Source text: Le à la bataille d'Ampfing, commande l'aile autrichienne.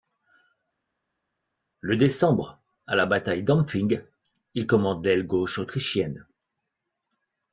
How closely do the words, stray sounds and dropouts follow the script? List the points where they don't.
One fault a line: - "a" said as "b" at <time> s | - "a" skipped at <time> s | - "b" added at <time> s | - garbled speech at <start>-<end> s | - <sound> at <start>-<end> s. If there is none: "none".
- "décembre" added at 2.0 s
- "il" added at 4.5 s
- "gauche" added at 5.3 s